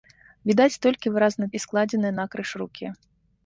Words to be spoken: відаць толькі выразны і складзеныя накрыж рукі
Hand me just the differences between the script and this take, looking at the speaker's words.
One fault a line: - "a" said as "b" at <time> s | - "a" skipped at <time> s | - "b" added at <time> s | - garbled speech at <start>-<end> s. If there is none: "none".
none